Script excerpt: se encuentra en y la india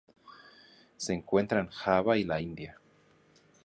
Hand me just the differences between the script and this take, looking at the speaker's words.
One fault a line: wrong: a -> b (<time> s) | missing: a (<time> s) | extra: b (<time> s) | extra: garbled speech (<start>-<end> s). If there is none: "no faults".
extra: java (1.7 s)